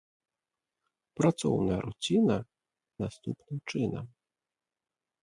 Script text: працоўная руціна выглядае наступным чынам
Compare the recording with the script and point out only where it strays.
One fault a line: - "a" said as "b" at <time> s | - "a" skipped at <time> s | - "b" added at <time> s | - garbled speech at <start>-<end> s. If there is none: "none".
- "выглядае" skipped at 2.4 s